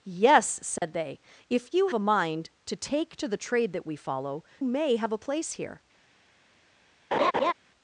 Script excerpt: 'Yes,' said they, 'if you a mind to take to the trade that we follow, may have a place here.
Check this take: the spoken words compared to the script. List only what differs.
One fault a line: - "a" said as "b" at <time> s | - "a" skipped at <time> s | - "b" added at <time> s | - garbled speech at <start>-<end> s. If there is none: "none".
none